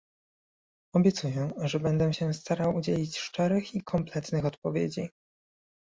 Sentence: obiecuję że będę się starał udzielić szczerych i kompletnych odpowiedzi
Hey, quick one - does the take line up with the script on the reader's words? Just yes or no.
yes